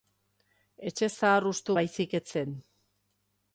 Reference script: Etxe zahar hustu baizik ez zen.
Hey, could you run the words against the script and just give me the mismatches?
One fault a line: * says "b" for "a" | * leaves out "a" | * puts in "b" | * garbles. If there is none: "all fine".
all fine